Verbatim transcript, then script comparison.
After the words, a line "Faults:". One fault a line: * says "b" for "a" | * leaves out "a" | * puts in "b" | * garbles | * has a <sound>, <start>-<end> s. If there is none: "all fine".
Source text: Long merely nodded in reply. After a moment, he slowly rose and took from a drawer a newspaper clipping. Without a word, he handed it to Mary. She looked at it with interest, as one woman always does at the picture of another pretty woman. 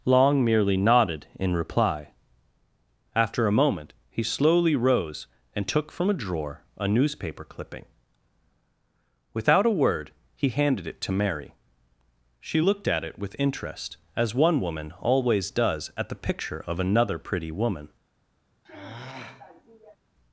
Long merely nodded in reply. After a moment, he slowly rose and took from a drawer a newspaper clipping. Without a word, he handed it to Mary. She looked at it with interest, as one woman always does at the picture of another pretty woman.
Faults:
* has a sigh, 18.6-20.0 s